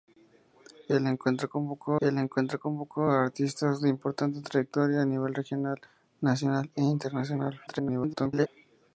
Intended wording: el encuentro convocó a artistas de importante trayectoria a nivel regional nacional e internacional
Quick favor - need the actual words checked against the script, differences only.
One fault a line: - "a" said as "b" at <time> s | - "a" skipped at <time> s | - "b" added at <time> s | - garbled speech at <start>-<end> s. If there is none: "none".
- "el encuentro convocó" added at 2.0 s
- garbled speech at 7.7-8.5 s